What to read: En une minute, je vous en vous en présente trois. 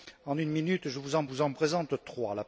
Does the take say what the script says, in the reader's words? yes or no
yes